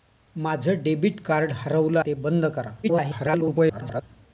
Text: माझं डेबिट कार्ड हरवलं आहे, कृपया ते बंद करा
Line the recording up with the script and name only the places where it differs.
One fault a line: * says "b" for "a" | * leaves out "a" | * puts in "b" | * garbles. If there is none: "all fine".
* leaves out "आहे कृपया"
* garbles